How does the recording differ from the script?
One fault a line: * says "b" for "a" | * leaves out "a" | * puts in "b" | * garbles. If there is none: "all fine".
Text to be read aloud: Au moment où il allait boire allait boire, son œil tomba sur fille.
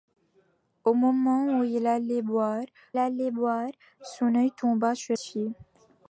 all fine